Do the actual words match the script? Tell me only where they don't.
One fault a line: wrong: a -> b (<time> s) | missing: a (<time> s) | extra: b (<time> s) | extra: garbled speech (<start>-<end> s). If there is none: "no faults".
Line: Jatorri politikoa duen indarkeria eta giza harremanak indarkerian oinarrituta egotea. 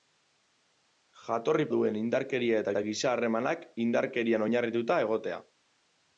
missing: politikoa (1.6 s)
extra: eta (2.7 s)